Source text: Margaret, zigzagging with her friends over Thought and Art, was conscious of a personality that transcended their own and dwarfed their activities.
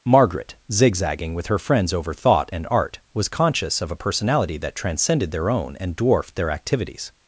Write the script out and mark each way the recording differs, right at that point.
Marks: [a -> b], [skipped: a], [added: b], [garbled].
Margaret, zigzagging with her friends over Thought and Art, was conscious of a personality that transcended their own and dwarfed their activities.